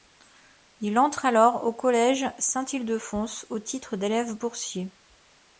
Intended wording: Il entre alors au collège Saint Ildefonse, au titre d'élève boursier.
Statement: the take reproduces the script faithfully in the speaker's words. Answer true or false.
true